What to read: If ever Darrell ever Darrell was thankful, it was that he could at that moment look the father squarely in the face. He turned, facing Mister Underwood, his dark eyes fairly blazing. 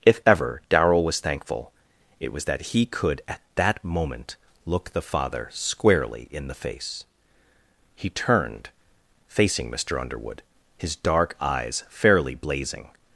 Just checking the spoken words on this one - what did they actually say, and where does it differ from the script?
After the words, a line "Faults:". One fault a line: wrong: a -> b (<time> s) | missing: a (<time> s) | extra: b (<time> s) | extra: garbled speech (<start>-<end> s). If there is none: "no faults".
If ever Darrell was thankful, it was that he could at that moment look the father squarely in the face. He turned, facing Mister Underwood, his dark eyes fairly blazing.
Faults:
missing: ever Darrell (1.1 s)